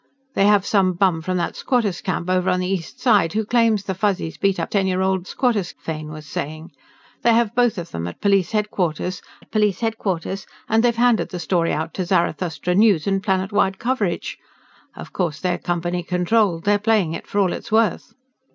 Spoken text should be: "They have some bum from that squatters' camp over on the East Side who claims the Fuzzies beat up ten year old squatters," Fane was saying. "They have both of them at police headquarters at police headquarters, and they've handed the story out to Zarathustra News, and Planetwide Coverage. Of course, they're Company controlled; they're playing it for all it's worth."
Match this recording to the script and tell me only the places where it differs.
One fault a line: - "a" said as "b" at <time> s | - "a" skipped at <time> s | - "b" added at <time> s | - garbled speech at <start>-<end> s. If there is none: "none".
none